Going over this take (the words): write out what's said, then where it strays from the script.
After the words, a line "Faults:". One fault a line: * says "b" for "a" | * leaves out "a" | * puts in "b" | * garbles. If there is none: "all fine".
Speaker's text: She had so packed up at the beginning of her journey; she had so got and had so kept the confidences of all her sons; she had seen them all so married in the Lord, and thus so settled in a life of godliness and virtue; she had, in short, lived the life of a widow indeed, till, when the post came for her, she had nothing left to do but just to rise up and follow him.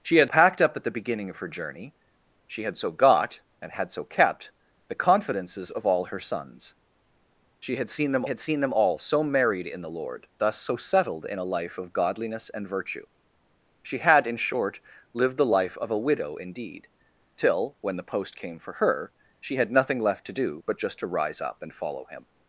She had packed up at the beginning of her journey; she had so got and had so kept the confidences of all her sons; she had seen them had seen them all so married in the Lord, thus so settled in a life of godliness and virtue; she had, in short, lived the life of a widow indeed, till, when the post came for her, she had nothing left to do but just to rise up and follow him.
Faults:
* leaves out "so"
* puts in "had seen them"
* leaves out "and"